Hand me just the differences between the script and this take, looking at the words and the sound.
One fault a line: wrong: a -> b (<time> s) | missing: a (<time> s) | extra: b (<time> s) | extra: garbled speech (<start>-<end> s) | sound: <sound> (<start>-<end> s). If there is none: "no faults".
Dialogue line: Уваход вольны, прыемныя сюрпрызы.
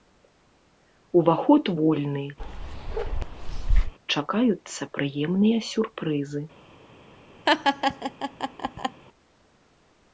sound: bark (2.4-3.9 s)
extra: чакаюцца (4.1 s)
sound: laugh (7.5-9.0 s)